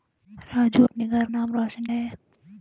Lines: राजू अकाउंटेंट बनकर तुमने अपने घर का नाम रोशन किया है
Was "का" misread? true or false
true